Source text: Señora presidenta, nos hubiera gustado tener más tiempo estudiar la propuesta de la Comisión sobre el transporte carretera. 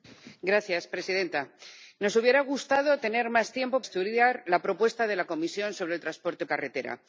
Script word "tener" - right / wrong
right